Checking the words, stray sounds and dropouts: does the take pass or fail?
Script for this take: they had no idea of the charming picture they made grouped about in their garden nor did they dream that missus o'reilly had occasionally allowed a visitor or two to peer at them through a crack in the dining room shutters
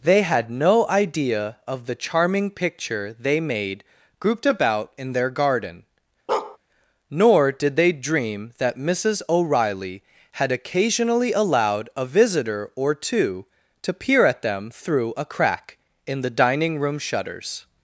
fail